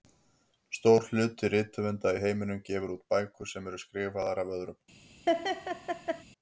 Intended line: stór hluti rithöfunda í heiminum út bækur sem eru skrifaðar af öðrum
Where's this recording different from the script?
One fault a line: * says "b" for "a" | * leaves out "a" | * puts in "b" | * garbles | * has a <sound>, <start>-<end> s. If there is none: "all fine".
* puts in "gefur"
* has a laugh, 5.3-6.2 s